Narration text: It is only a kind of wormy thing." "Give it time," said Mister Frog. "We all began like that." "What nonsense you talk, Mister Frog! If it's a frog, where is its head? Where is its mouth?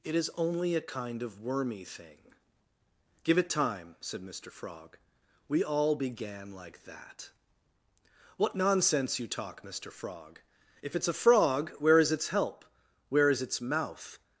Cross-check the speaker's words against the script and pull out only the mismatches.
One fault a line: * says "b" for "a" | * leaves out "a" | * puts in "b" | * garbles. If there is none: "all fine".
* says "help" for "head"